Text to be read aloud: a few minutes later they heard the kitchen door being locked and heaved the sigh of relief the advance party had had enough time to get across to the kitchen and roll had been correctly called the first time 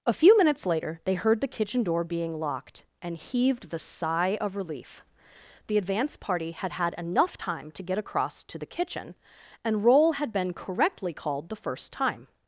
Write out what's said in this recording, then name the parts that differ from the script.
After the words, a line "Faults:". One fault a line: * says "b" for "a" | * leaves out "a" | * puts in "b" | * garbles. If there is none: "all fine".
a few minutes later they heard the kitchen door being locked and heaved the sigh of relief the advance party had had enough time to get across to the kitchen and roll had been correctly called the first time
Faults:
all fine